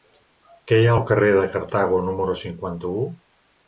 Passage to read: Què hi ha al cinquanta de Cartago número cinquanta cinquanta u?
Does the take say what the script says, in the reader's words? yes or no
no